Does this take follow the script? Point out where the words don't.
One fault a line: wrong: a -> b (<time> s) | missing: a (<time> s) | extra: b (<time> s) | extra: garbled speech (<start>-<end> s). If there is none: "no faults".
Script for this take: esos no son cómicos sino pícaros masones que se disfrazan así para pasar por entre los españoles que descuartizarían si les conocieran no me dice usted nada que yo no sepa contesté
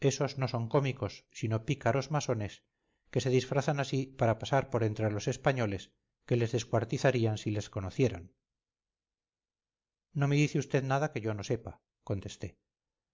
extra: les (6.3 s)